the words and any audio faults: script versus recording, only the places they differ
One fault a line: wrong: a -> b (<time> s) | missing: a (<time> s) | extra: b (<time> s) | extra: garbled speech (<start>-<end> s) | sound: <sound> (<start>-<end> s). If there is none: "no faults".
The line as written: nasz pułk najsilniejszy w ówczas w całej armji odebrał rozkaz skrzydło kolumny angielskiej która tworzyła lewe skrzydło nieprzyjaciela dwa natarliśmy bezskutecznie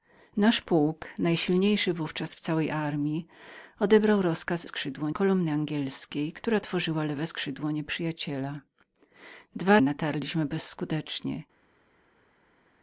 no faults